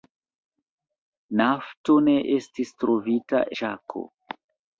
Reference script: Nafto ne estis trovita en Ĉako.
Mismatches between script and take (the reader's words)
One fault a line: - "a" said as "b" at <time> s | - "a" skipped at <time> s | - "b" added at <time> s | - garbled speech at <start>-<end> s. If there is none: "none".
- "en" skipped at 3.5 s